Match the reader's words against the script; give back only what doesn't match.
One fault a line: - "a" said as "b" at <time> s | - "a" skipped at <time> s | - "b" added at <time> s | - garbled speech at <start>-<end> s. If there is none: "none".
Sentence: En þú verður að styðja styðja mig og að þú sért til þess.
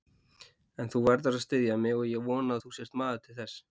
- "styðja" skipped at 1.8 s
- "ég vona" added at 2.1 s
- "maður" added at 3.0 s